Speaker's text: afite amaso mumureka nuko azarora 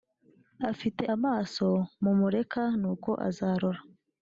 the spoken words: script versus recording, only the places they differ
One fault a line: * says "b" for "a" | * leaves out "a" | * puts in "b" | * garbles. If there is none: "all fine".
all fine